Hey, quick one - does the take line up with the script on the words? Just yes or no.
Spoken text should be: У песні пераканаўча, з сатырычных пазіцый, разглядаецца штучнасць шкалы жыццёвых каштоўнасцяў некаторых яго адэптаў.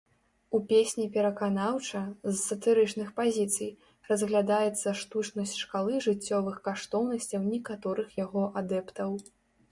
yes